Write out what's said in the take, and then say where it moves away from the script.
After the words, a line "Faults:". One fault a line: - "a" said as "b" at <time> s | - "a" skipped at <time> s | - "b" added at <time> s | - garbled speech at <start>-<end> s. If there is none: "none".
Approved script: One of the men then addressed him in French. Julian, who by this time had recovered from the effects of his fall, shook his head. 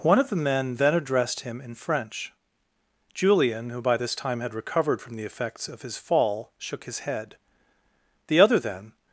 One of the men then addressed him in French. Julian, who by this time had recovered from the effects of his fall, shook his head. The other then
Faults:
- "The other then" added at 8.3 s